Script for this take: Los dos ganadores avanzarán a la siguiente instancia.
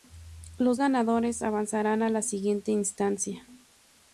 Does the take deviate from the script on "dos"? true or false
true